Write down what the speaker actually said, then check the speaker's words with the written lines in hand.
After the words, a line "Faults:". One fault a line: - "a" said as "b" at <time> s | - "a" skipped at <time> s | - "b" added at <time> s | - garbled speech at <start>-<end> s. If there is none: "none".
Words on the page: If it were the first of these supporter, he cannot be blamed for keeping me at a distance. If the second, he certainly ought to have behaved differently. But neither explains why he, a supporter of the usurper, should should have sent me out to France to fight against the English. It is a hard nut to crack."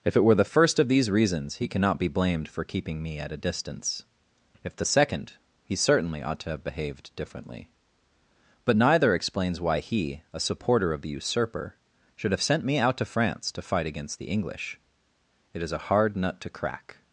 If it were the first of these reasons, he cannot be blamed for keeping me at a distance. If the second, he certainly ought to have behaved differently. But neither explains why he, a supporter of the usurper, should have sent me out to France to fight against the English. It is a hard nut to crack."
Faults:
- "supporter" said as "reasons" at 1.1 s
- "should" skipped at 12.3 s